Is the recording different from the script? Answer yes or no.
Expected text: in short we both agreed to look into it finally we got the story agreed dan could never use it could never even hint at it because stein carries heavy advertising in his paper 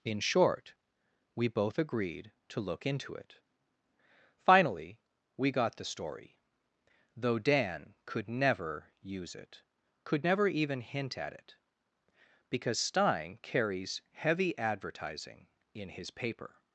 yes